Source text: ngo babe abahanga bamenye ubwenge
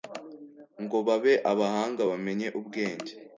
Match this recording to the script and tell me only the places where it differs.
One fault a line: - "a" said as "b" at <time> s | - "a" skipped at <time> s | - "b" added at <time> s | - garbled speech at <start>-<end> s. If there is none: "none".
none